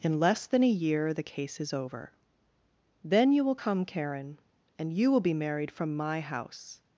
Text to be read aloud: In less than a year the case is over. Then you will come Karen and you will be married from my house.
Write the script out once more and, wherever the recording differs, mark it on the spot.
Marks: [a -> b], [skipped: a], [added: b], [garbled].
In less than a year the case is over. Then you will come Karen and you will be married from my house.